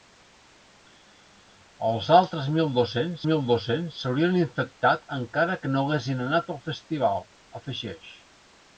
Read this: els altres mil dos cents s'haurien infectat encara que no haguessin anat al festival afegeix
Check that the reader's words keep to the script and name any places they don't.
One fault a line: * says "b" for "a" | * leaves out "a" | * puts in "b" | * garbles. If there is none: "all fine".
* puts in "mil dos cents"